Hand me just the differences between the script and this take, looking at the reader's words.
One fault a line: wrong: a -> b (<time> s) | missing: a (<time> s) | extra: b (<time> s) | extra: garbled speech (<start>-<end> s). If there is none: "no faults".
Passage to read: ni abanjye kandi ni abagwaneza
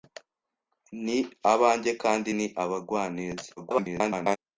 extra: garbled speech (3.6-4.4 s)